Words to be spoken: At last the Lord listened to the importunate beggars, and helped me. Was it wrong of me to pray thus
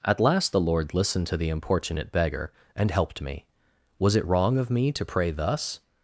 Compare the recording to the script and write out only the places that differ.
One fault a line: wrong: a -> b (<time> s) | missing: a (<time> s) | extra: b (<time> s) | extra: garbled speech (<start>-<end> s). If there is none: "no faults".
wrong: beggars -> beggar (2.1 s)